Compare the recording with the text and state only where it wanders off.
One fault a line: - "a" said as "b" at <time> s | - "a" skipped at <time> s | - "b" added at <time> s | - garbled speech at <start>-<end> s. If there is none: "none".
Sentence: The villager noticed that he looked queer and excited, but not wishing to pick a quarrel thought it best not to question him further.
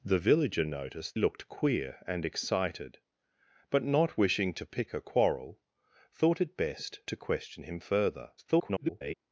- "that he" skipped at 1.2 s
- "not" skipped at 7.0 s
- garbled speech at 8.4-9.1 s